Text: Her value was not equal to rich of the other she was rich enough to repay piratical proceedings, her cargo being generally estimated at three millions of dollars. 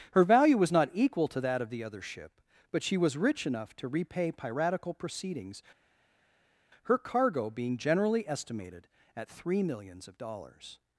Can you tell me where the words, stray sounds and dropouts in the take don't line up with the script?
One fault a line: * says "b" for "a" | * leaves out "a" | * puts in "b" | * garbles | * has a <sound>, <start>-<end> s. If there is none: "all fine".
* says "that" for "rich"
* puts in "ship but"